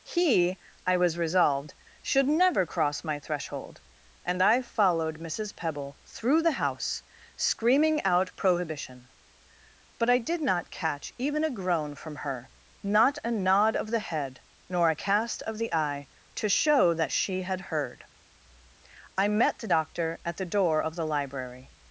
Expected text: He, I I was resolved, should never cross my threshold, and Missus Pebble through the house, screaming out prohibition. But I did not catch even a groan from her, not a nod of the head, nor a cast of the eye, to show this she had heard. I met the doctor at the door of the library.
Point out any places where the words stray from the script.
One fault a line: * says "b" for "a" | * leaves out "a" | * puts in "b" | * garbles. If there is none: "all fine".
* leaves out "I"
* puts in "I followed"
* says "that" for "this"